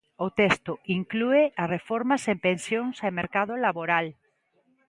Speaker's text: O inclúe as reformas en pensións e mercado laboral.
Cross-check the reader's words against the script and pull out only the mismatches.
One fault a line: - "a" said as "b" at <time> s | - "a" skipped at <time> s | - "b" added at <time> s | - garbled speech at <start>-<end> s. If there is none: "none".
- "texto" added at 0.4 s